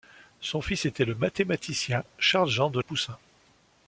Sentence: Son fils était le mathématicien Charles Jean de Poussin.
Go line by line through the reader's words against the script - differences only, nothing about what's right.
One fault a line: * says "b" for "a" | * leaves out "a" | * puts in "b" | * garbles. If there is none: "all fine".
all fine